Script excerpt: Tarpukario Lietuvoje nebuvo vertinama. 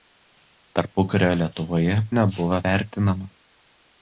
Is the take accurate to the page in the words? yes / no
yes